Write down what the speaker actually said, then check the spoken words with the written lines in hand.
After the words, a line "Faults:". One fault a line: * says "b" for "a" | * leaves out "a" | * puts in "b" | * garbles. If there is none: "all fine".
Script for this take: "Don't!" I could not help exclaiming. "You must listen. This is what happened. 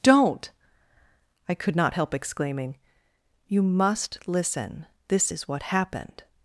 "Don't!" I could not help exclaiming. "You must listen. This is what happened.
Faults:
all fine